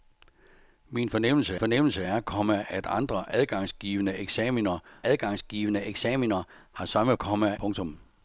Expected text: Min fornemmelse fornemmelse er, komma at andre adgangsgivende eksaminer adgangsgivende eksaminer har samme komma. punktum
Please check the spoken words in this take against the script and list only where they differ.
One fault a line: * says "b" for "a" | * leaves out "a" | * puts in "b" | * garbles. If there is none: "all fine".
all fine